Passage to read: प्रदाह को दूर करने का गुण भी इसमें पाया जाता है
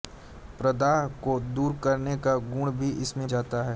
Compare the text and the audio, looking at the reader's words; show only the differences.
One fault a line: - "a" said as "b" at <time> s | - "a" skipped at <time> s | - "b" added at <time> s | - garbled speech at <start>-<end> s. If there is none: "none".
- "पाया" skipped at 3.3 s